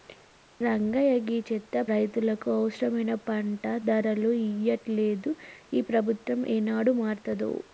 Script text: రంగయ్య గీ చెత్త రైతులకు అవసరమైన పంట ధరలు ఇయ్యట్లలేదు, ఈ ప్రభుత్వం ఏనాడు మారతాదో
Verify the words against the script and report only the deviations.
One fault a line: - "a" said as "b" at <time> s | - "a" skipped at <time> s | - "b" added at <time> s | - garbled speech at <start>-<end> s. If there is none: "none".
none